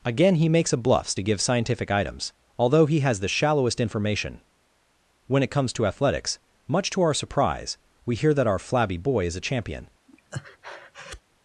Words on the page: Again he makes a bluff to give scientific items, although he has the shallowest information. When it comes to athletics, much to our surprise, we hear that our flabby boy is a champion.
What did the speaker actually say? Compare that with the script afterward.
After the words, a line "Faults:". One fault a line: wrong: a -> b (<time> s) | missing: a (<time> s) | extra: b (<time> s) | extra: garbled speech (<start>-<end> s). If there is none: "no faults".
Again he makes a bluffs to give scientific items, although he has the shallowest information. When it comes to athletics, much to our surprise, we hear that our flabby boy is a champion.
Faults:
wrong: bluff -> bluffs (0.8 s)